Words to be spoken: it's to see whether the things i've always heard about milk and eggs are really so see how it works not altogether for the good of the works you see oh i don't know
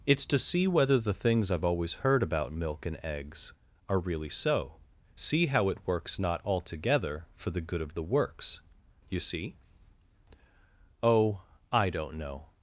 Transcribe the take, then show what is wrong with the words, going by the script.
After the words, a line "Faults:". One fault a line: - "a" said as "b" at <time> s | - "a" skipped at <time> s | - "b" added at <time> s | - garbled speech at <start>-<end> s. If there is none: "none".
it's to see whether the things i've always heard about milk and eggs are really so see how it works not altogether for the good of the works you see oh i don't know
Faults:
none